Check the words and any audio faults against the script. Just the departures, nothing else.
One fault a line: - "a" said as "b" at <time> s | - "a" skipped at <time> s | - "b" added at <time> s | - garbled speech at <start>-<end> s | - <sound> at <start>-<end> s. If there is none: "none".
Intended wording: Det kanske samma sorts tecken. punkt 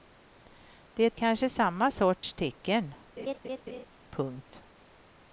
- dropout at 2.2-2.2 s
- laugh at 3.2-3.9 s